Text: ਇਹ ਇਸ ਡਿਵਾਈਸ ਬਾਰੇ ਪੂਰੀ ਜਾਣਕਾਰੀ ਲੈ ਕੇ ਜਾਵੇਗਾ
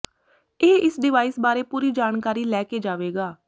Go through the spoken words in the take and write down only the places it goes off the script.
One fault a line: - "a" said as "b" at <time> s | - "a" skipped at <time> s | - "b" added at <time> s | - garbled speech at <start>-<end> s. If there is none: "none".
none